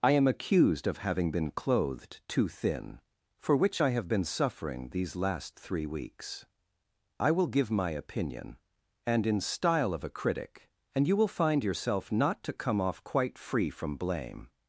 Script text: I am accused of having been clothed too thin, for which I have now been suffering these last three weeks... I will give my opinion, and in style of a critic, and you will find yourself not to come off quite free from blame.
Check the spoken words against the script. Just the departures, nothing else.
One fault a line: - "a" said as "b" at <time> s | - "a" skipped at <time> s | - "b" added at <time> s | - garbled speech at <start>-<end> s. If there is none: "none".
- "now" skipped at 4.1 s